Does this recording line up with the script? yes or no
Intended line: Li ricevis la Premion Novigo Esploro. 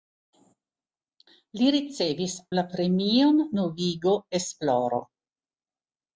yes